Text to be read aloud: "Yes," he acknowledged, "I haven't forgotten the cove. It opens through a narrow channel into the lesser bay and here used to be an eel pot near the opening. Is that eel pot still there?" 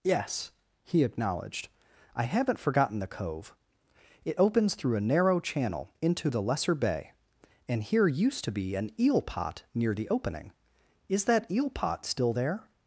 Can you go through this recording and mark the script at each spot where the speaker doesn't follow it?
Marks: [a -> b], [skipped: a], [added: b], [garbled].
"Yes," he acknowledged, "I haven't forgotten the cove. It opens through a narrow channel into the lesser bay and here used to be an eel pot near the opening. Is that eel pot still there?"